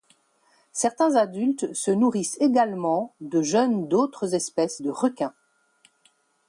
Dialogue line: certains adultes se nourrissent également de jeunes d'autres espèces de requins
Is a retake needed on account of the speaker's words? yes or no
no